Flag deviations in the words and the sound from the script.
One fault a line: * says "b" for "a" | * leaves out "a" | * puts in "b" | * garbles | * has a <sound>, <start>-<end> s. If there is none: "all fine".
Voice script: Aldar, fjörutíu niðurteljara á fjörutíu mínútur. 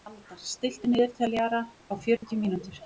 * says "stilltu" for "fjörutíu"
* has a dropout, 2.2-2.2 s